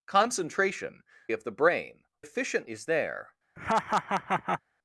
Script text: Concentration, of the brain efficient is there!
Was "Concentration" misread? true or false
false